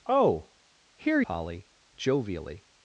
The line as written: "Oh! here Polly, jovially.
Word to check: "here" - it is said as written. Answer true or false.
true